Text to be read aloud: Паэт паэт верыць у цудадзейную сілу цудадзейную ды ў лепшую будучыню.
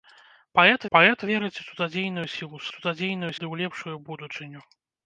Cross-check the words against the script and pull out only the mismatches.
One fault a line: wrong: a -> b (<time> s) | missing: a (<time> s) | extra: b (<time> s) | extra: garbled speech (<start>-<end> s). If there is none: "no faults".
no faults